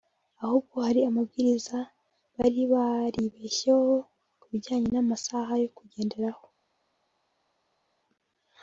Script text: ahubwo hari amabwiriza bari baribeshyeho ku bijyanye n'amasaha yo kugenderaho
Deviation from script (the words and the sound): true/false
false